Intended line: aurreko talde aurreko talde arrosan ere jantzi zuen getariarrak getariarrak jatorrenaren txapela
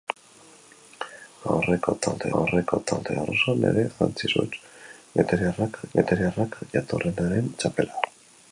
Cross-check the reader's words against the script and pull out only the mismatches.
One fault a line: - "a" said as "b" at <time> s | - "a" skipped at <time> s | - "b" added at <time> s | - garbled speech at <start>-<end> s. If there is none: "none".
none